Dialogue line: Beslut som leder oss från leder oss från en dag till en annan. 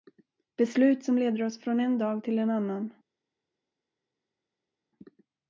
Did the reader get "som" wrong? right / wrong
right